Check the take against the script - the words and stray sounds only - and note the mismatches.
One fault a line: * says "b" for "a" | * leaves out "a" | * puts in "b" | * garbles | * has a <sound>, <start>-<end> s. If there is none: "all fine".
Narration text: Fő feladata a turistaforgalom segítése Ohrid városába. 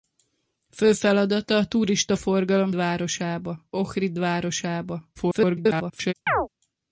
* says "városába" for "segítése"
* garbles
* has a chirp, 6.3-6.5 s